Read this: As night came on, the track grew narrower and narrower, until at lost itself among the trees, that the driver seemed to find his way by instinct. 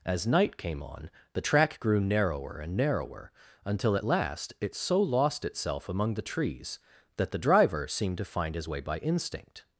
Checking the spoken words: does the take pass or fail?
fail